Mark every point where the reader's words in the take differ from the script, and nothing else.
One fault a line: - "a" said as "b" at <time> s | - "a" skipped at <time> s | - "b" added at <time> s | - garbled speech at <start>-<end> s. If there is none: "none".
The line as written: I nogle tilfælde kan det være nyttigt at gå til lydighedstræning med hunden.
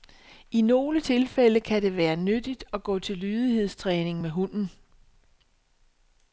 none